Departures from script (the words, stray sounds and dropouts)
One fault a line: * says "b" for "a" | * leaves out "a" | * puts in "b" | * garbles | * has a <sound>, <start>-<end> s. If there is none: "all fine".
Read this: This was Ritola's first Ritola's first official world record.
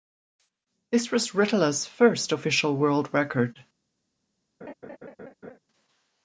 * leaves out "Ritola's first"
* has a laugh, 4.6-5.6 s